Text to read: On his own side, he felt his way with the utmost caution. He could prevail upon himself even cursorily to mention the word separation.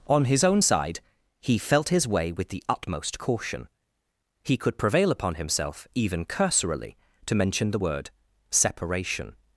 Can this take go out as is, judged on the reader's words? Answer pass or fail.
pass